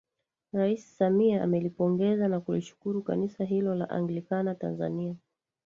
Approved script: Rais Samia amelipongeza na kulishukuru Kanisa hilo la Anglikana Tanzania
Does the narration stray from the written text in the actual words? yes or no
no